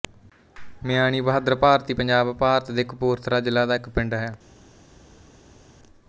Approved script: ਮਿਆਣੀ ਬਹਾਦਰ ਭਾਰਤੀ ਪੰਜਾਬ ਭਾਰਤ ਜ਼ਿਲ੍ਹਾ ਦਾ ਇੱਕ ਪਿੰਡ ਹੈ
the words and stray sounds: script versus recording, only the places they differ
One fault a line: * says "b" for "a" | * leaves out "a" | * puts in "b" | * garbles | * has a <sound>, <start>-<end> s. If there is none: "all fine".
* puts in "ਦੇ ਕਪੂਰਥਲਾ"